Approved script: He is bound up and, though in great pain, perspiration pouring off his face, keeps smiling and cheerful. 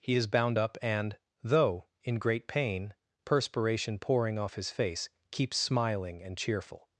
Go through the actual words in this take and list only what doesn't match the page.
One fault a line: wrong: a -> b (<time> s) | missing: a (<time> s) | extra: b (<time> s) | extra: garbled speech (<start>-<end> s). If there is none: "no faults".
no faults